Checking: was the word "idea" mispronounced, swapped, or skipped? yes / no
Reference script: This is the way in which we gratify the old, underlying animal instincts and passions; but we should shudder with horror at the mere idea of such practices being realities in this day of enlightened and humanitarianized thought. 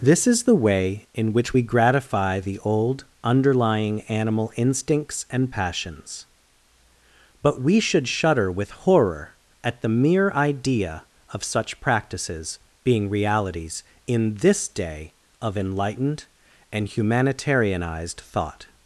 no